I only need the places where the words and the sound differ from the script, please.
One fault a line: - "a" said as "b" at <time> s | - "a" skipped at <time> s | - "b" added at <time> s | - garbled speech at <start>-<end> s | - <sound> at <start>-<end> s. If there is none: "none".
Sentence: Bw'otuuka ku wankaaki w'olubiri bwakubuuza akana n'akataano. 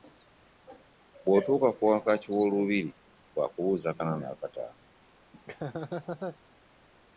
- laugh at 5.3-6.4 s